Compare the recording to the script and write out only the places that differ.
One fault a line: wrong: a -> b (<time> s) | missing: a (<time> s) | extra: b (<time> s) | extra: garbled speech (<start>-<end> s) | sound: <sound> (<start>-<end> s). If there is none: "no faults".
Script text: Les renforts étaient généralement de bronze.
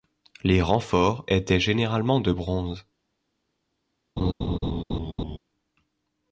sound: laugh (4.2-5.4 s)